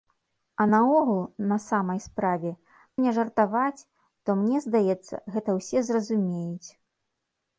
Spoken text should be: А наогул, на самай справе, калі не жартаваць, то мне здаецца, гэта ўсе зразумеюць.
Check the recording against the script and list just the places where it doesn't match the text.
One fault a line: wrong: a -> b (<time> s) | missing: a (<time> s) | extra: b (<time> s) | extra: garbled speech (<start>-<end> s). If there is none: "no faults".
missing: калі (2.5 s)